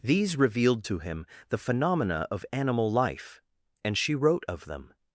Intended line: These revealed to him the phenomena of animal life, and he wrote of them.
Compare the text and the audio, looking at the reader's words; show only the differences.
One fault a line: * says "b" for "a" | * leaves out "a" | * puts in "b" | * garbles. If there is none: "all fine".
* says "she" for "he"